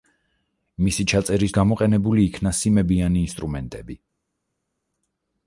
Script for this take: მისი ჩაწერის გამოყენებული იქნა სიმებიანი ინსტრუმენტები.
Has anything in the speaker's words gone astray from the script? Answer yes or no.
no